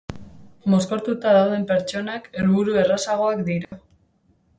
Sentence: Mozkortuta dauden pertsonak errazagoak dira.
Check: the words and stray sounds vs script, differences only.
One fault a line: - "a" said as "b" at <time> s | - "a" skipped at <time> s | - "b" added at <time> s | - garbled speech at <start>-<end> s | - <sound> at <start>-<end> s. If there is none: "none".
- "helburu" added at 2.4 s
- dropout at 3.6-3.7 s